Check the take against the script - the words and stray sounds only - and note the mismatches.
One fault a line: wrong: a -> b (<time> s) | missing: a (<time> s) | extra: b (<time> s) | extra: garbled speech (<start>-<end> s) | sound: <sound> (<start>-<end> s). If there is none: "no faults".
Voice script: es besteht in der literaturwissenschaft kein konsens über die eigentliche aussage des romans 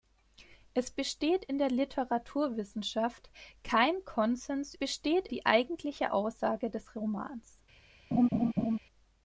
wrong: über -> besteht (4.7 s)
sound: laugh (8.1-8.8 s)